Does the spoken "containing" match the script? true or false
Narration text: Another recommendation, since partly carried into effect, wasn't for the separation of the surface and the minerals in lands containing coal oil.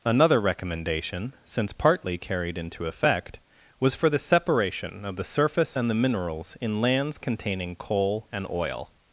true